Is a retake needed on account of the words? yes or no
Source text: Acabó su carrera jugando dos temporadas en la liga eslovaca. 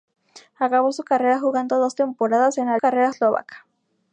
yes